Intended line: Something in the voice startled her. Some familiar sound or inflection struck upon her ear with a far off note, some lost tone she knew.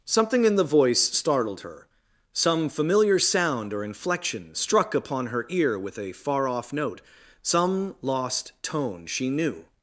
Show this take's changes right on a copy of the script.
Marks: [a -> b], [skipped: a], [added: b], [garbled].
Something in the voice startled her. Some familiar sound or inflection struck upon her ear with a far off note, some lost tone she knew.